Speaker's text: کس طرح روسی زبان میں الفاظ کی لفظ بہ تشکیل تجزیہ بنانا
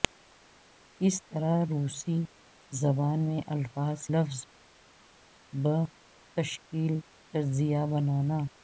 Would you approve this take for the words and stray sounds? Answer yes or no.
no